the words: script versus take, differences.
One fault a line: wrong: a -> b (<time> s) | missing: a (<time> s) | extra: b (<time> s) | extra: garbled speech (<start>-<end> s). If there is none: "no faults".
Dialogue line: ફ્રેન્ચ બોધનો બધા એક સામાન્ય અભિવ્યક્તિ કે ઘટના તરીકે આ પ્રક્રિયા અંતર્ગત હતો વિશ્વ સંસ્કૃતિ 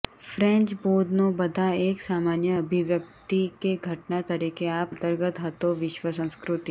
missing: પ્રક્રિયા (4.9 s)